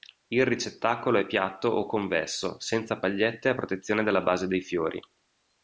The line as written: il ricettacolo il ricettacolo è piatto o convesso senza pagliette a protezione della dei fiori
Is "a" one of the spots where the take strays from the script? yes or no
no